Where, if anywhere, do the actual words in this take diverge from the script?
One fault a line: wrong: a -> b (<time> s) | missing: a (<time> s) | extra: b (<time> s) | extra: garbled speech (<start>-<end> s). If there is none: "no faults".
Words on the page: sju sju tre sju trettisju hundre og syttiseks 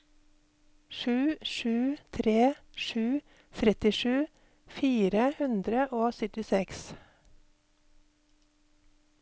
extra: fire (4.8 s)